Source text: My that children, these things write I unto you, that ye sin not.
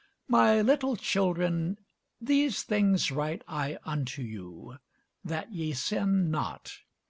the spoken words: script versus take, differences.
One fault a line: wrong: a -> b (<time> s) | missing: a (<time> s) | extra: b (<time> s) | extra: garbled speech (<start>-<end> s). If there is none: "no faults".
wrong: that -> little (0.6 s)